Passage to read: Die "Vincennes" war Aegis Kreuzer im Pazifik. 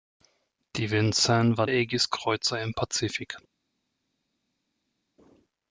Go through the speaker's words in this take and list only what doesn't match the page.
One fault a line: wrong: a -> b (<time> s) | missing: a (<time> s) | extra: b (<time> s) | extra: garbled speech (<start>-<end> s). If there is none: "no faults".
no faults